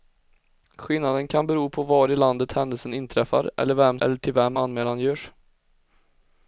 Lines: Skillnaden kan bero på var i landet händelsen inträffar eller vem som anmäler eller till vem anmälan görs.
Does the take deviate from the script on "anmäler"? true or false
true